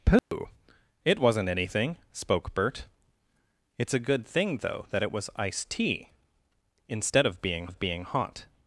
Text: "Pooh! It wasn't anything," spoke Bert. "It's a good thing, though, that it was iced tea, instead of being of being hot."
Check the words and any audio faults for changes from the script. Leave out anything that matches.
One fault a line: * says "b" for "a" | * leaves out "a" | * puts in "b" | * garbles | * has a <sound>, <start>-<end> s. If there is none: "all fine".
* has a dropout, 0.2-0.3 s